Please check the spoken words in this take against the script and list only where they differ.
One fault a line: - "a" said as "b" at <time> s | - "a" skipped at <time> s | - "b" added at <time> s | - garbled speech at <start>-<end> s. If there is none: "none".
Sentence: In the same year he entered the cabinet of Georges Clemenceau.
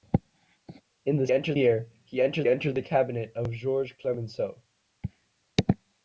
- "same" said as "entered" at 1.3 s
- "entered" added at 2.5 s